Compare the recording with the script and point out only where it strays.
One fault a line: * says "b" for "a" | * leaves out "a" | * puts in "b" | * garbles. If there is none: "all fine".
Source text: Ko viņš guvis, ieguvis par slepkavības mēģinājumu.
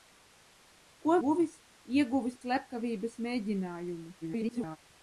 * leaves out "viņš"
* leaves out "par"
* garbles